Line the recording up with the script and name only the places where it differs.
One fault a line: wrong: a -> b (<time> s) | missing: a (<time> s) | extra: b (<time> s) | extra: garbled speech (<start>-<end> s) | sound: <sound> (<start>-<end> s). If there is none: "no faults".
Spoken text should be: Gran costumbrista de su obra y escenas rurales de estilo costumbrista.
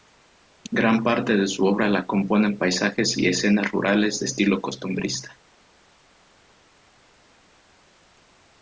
wrong: costumbrista -> parte (1.0 s)
extra: la componen paisajes (1.9 s)